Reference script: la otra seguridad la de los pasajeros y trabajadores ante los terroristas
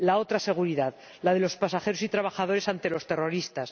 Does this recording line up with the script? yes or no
yes